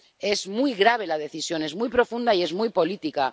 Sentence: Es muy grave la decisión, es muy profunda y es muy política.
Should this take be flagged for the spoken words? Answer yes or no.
no